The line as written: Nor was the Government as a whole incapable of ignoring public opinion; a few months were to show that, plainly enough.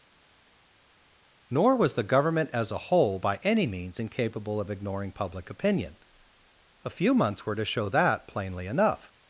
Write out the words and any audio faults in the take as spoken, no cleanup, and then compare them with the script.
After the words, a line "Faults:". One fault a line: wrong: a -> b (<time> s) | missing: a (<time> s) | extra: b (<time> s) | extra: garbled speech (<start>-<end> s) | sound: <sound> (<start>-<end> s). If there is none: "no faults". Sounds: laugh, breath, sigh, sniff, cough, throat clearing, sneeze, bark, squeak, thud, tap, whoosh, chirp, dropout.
Nor was the Government as a whole by any means incapable of ignoring public opinion; a few months were to show that, plainly enough.
Faults:
extra: by any means (3.2 s)